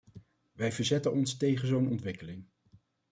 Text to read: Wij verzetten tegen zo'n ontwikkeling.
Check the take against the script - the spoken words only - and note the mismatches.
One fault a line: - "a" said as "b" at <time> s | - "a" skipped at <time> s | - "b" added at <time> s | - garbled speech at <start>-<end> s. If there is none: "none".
- "ons" added at 1.1 s